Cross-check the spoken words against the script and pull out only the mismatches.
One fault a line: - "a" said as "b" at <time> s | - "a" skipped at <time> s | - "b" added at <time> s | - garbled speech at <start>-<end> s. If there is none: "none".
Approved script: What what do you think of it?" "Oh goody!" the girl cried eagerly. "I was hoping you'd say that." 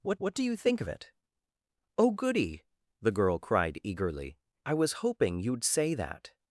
none